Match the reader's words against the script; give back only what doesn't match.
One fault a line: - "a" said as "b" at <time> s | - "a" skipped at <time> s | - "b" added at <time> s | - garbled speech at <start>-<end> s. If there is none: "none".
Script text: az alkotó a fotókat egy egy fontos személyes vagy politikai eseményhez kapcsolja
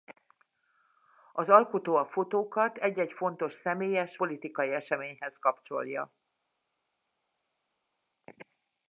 - "vagy" skipped at 4.2 s